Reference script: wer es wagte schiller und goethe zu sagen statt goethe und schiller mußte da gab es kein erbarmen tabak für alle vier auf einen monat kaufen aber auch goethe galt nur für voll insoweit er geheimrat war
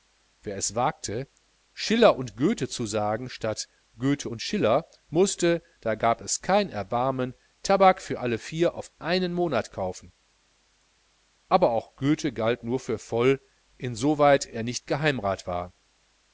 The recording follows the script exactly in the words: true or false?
false